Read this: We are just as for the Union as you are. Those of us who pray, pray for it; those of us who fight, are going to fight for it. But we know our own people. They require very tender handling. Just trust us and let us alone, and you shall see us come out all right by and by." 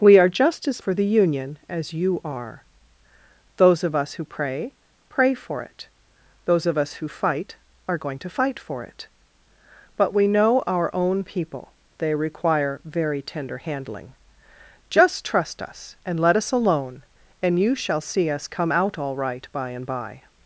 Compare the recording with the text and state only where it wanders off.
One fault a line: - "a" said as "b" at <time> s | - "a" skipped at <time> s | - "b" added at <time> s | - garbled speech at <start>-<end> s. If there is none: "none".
none